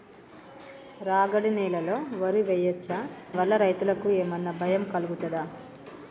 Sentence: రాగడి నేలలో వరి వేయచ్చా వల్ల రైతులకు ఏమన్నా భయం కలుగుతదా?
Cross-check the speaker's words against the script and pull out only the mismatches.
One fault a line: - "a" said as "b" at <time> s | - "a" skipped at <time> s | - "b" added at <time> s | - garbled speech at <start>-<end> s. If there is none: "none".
none